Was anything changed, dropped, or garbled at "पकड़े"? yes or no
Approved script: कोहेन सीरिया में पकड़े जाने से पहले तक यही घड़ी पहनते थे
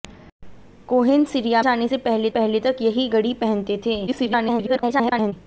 yes